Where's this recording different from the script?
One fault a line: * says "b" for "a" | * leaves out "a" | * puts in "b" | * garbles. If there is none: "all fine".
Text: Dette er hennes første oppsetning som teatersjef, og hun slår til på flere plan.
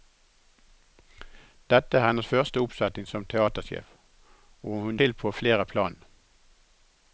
* leaves out "slår"